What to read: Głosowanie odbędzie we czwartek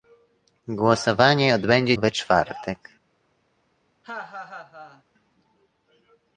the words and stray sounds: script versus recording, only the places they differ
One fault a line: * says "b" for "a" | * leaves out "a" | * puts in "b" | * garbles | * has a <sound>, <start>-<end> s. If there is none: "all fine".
* has a laugh, 4.0-5.0 s